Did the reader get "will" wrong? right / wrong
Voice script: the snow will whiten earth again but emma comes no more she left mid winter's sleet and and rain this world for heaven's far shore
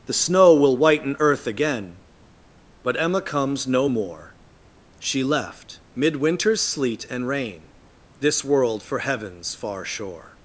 right